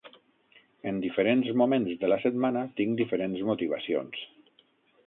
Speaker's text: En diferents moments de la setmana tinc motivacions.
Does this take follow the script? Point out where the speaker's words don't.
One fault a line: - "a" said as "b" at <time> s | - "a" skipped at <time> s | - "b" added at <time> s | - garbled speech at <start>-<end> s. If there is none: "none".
- "diferents" added at 3.0 s